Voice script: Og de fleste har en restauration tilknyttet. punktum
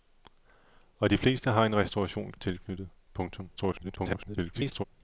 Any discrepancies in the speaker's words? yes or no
yes